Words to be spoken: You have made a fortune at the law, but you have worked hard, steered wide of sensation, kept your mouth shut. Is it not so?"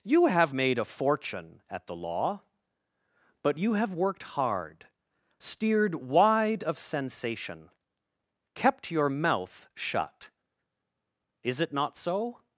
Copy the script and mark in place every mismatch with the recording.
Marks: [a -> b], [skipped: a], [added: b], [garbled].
You have made a fortune at the law, but you have worked hard, steered wide of sensation, kept your mouth shut. Is it not so?"